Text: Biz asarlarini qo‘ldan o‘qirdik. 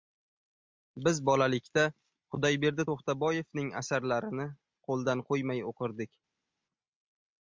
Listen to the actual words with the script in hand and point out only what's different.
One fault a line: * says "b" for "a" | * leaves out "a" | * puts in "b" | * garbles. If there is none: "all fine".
* puts in "bolalikda Xudoyberdi To‘xtaboyevning"
* puts in "qo‘ymay"